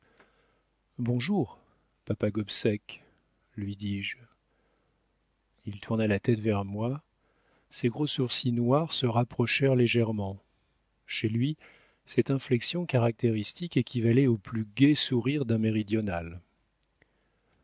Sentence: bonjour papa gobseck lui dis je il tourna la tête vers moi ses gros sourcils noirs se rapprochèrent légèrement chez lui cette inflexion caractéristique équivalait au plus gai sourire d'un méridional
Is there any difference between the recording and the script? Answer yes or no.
no